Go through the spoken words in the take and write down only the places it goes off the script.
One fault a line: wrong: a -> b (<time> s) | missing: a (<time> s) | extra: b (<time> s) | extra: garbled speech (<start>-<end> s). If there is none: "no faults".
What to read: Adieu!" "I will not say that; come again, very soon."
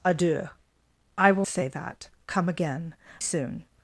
missing: not (1.4 s)
missing: very (2.9 s)